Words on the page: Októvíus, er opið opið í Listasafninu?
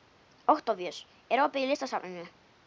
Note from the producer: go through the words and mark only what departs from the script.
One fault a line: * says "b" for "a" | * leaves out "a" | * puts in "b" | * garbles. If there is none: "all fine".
* leaves out "opið"